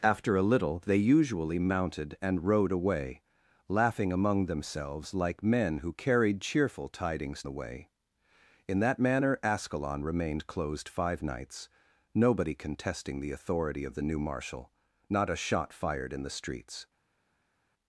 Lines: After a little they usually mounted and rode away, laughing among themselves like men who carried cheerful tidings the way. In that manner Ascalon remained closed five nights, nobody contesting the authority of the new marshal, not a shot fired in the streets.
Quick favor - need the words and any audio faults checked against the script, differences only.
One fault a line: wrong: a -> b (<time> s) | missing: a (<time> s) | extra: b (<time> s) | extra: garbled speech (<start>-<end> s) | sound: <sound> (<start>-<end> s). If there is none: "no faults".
no faults